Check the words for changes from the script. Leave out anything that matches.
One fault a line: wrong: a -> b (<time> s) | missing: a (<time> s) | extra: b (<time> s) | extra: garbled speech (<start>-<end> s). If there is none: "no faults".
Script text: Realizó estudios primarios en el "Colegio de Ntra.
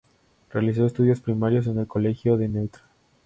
no faults